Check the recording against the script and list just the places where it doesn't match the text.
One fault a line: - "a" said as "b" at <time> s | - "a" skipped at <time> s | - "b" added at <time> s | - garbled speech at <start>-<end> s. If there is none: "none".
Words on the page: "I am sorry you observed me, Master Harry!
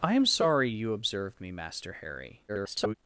- garbled speech at 2.5-2.9 s